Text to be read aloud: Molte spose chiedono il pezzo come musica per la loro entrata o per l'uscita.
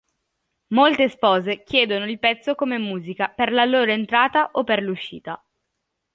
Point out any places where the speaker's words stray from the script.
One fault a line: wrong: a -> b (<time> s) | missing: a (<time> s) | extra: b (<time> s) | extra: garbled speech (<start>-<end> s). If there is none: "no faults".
no faults